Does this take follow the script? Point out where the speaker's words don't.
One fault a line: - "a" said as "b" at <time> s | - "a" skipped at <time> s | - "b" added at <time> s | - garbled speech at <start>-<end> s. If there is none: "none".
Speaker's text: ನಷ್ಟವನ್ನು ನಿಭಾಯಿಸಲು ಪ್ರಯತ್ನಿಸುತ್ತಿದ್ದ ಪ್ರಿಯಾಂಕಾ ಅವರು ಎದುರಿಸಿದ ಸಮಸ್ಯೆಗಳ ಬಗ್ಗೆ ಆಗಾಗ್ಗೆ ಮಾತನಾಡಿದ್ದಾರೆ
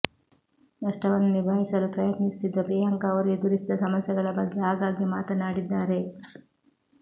none